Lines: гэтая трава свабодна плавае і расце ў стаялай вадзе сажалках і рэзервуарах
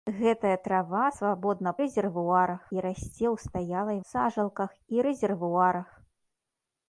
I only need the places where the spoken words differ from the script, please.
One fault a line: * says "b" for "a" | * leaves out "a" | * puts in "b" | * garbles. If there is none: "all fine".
* says "рэзервуарах" for "плавае"
* leaves out "вадзе"